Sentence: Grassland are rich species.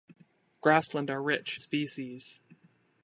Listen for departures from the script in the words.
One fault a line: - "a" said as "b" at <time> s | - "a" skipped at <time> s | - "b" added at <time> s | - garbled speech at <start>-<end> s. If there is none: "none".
none